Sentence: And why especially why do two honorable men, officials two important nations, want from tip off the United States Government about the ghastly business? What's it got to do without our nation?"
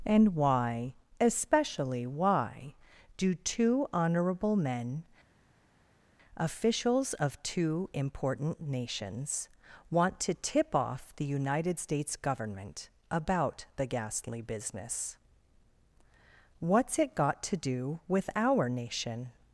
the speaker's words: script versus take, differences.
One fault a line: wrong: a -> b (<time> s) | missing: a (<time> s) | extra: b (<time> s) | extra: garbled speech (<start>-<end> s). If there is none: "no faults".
extra: of (7.1 s)
wrong: from -> to (10.2 s)
wrong: without -> with (18.1 s)